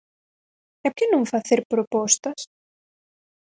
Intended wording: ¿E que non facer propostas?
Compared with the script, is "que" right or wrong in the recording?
right